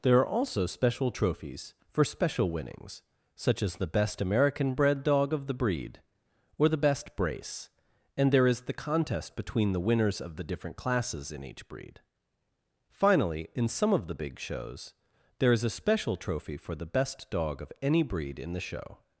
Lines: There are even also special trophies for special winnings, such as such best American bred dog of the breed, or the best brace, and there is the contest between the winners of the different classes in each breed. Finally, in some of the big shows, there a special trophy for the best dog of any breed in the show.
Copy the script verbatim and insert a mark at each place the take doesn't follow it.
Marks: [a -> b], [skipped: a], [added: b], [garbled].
There are [skipped: even] also special trophies for special winnings, such as [such -> the] best American bred dog of the breed, or the best brace, and there is the contest between the winners of the different classes in each breed. Finally, in some of the big shows, there [added: is] a special trophy for the best dog of any breed in the show.